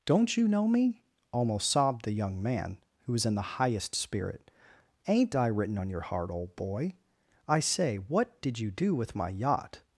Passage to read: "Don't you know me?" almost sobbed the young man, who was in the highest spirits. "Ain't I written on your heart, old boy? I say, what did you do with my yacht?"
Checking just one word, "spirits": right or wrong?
wrong